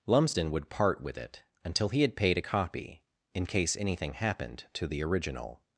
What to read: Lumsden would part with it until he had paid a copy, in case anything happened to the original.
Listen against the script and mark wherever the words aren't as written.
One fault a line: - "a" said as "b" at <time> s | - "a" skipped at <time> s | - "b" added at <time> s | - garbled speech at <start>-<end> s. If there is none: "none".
none